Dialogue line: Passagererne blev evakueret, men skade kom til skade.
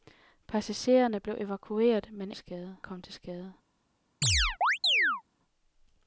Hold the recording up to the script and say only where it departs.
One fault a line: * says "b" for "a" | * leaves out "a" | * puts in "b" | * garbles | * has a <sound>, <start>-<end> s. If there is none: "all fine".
* has a chirp, 4.2-5.2 s